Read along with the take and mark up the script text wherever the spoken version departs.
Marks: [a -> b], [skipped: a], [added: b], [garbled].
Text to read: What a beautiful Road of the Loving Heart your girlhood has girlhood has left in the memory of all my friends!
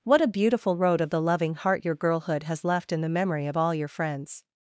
What a beautiful Road of the Loving Heart your girlhood has [skipped: girlhood has] left in the memory of all [my -> your] friends!